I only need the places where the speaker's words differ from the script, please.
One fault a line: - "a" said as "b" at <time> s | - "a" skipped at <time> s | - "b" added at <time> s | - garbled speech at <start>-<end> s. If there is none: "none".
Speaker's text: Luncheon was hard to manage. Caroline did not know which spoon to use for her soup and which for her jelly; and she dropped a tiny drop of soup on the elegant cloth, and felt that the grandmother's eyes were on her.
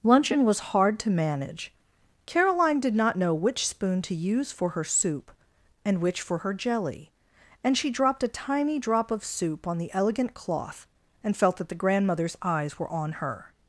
none